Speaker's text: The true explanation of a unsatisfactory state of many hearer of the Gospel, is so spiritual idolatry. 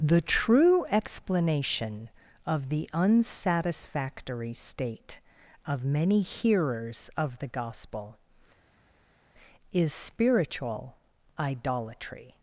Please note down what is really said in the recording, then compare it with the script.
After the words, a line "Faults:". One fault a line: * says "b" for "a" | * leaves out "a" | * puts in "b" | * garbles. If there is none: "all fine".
The true explanation of the unsatisfactory state of many hearers of the Gospel, is spiritual idolatry.
Faults:
* says "the" for "a"
* says "hearers" for "hearer"
* leaves out "so"